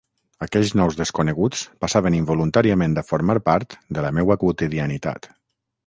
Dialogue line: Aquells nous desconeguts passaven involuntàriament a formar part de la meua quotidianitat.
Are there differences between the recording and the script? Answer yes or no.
no